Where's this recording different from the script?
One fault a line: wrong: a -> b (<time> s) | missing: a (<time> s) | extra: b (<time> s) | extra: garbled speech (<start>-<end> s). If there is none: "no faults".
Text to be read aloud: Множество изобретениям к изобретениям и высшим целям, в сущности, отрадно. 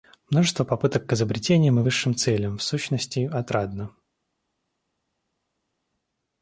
wrong: изобретениям -> попыток (0.6 s)